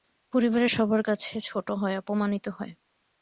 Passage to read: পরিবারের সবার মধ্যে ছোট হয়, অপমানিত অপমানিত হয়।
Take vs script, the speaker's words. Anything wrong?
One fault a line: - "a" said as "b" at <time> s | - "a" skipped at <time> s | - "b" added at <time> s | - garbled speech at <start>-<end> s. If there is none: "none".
- "মধ্যে" said as "কাছে" at 1.0 s
- "অপমানিত" skipped at 2.5 s